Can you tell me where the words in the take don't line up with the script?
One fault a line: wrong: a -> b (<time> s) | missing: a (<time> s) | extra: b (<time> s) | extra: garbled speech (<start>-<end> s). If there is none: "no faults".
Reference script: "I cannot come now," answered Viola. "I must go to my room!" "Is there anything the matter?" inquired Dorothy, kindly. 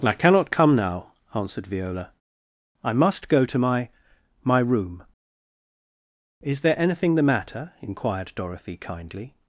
extra: my (4.4 s)